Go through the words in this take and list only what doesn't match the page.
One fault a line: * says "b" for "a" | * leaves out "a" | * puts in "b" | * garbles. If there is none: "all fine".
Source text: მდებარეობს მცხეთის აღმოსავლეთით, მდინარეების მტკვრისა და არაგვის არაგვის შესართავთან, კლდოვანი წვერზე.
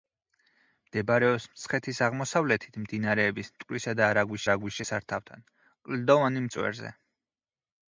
all fine